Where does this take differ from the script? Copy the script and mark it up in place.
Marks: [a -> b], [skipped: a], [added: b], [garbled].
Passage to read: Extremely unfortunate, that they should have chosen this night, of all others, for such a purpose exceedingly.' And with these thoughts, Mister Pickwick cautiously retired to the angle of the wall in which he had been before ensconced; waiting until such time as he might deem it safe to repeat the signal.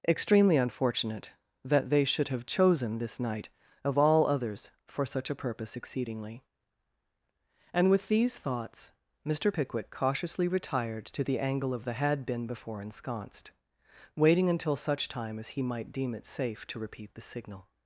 Extremely unfortunate, that they should have chosen this night, of all others, for such a purpose exceedingly.' And with these thoughts, Mister Pickwick cautiously retired to the angle of the [skipped: wall in which he] had been before ensconced; waiting until such time as he might deem it safe to repeat the signal.